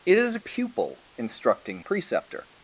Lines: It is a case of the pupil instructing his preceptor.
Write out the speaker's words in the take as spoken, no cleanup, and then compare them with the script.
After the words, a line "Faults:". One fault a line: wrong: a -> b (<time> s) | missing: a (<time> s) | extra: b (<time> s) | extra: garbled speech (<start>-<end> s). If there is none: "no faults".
It is a pupil instructing preceptor.
Faults:
missing: case of the (0.4 s)
missing: his (1.8 s)